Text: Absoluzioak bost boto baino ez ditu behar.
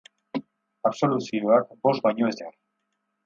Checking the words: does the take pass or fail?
fail